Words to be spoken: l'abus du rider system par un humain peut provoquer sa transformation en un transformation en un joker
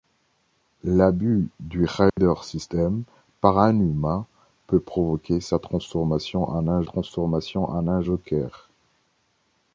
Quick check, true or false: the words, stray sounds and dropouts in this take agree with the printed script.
false